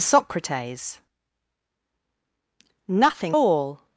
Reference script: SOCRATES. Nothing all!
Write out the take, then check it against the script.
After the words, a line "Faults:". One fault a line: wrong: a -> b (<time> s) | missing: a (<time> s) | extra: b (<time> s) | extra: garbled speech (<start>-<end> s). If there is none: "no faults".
SOCRATES. Nothing all!
Faults:
no faults